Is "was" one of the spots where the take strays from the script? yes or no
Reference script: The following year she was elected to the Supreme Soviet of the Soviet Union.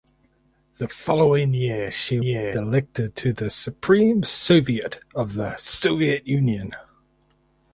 yes